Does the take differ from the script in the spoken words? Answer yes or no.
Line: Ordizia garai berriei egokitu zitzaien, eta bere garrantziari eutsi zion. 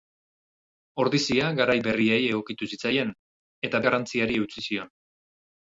yes